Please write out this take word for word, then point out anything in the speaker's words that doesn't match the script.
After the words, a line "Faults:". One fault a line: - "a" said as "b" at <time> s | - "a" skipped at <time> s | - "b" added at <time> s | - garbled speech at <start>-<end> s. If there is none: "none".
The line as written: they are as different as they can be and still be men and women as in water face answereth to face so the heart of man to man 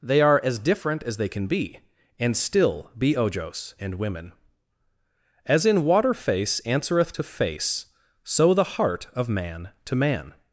they are as different as they can be and still be ojos and women as in water face answereth to face so the heart of man to man
Faults:
- "men" said as "ojos" at 3.1 s